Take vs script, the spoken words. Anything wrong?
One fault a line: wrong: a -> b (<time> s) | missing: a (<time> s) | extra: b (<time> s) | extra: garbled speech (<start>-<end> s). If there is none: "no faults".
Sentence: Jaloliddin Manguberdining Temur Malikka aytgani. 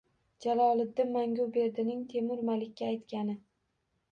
no faults